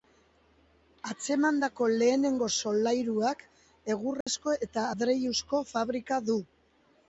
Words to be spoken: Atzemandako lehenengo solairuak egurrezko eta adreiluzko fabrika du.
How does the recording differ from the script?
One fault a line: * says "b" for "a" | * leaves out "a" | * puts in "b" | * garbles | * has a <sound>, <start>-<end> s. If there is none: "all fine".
* has a dropout, 4.2-4.3 s